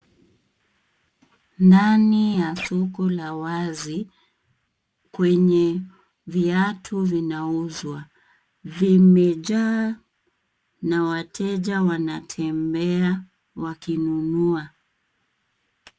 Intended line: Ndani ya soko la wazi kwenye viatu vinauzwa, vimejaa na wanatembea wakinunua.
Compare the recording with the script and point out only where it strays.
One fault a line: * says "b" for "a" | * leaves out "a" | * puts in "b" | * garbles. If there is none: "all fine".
* puts in "wateja"